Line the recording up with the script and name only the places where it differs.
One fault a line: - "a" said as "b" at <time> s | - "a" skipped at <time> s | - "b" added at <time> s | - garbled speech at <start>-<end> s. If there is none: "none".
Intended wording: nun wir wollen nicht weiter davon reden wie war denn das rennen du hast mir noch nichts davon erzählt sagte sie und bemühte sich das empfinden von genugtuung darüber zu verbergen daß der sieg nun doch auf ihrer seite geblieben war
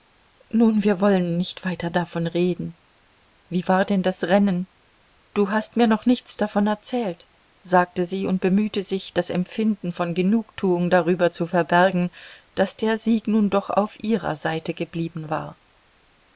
none